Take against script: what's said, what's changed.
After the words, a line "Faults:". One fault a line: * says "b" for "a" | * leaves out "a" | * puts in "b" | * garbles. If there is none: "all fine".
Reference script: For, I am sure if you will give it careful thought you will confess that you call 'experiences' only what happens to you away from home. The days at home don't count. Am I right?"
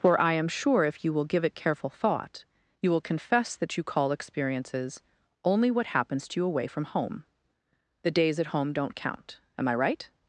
For, I am sure if you will give it careful thought you will confess that you call 'experiences' only what happens to you away from home. The days at home don't count. Am I right?"
Faults:
all fine